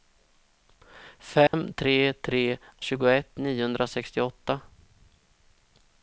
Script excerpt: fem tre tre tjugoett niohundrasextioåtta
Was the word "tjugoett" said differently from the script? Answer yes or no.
no